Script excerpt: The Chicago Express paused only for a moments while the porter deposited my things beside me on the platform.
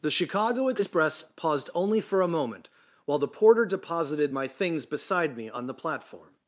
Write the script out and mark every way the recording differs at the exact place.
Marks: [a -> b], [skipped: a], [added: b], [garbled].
The Chicago Express paused only for a [moments -> moment] while the porter deposited my things beside me on the platform.